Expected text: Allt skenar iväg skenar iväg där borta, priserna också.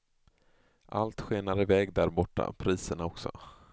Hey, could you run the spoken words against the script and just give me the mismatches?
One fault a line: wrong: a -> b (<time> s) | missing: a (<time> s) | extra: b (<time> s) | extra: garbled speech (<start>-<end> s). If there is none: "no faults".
missing: skenar iväg (1.9 s)